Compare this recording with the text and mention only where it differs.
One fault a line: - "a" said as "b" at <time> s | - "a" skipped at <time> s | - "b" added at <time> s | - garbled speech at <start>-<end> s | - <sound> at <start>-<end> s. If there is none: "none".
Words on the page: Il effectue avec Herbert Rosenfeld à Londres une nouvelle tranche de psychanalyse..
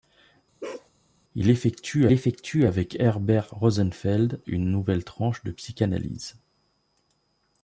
- bark at 0.6-0.9 s
- "effectue" added at 2.1 s
- "à Londres" skipped at 4.4 s